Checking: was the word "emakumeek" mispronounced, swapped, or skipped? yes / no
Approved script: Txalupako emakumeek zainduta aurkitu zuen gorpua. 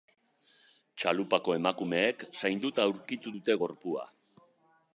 no